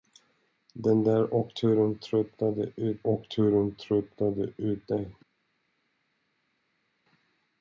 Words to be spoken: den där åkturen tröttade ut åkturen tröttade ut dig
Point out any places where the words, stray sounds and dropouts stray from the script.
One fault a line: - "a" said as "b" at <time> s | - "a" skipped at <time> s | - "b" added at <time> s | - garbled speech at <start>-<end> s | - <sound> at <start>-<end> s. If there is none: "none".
none